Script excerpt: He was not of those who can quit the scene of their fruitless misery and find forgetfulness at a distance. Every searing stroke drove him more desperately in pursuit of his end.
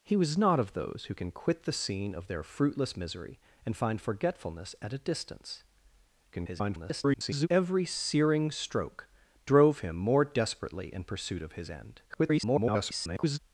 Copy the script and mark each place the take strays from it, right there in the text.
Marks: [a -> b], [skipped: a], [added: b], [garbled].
He was not of those who can quit the scene of their fruitless misery and find forgetfulness at a distance. [garbled] Every searing stroke drove him more desperately in pursuit of his end. [garbled]